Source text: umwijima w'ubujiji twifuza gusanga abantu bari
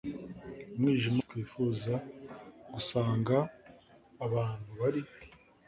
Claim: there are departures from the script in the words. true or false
true